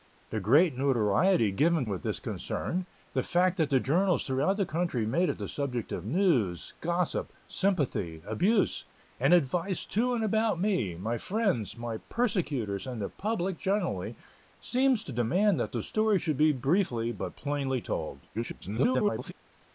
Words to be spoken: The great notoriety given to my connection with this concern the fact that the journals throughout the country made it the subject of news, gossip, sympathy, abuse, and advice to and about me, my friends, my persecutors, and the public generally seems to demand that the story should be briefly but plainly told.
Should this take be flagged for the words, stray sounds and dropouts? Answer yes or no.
yes